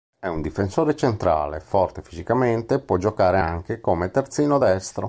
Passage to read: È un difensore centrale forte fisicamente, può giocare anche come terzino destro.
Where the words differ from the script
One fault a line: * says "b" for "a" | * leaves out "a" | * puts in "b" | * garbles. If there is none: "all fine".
all fine